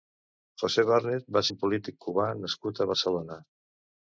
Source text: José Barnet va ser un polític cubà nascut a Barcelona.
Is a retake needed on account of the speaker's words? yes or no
yes